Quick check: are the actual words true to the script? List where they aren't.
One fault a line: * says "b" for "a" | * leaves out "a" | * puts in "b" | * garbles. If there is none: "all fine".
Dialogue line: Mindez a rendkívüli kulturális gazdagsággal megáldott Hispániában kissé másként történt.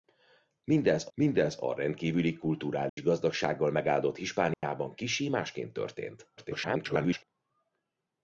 * puts in "mindez"
* garbles